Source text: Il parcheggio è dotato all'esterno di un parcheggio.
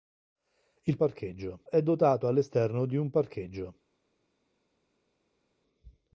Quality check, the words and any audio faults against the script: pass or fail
pass